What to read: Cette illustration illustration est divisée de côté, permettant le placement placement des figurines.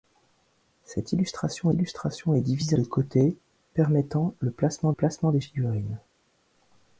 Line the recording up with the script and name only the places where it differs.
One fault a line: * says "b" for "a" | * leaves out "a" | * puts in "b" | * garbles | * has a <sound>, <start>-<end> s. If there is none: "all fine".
all fine